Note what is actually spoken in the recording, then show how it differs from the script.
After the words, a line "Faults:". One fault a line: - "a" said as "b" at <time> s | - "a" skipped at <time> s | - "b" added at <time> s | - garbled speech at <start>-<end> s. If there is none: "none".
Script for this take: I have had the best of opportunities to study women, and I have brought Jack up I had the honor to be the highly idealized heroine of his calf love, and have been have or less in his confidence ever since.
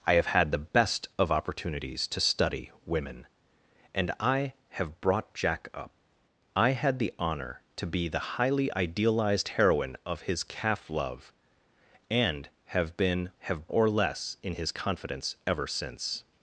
I have had the best of opportunities to study women, and I have brought Jack up I had the honor to be the highly idealized heroine of his calf love, and have been have or less in his confidence ever since.
Faults:
none